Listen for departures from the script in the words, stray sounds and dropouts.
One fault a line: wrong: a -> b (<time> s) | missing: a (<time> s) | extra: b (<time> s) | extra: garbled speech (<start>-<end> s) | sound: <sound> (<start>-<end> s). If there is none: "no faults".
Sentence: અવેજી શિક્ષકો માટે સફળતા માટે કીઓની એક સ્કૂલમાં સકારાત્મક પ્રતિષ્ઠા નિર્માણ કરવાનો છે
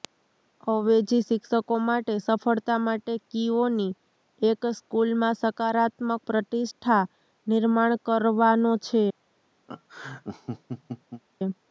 sound: laugh (9.7-11.2 s)